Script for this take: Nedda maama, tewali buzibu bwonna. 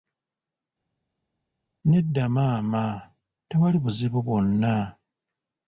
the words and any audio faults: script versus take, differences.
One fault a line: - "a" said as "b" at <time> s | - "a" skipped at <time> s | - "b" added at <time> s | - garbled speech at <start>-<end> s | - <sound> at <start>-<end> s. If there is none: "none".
none